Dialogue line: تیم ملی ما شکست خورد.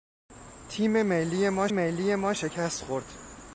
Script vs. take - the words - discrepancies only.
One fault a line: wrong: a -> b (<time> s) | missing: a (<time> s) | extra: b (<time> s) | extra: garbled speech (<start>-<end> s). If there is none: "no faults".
extra: ملی ما (1.7 s)